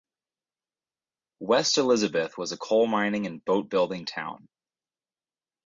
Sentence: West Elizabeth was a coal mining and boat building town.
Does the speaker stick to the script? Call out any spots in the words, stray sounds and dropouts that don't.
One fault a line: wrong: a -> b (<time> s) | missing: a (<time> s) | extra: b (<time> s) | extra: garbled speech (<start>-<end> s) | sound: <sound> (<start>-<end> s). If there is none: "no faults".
no faults